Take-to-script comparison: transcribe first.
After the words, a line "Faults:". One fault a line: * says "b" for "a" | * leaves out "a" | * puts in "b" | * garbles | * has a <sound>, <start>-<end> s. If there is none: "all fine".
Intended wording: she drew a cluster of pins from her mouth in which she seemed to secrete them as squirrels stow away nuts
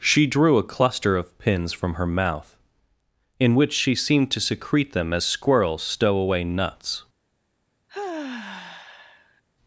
she drew a cluster of pins from her mouth in which she seemed to secrete them as squirrels stow away nuts
Faults:
* has a sigh, 7.9-9.4 s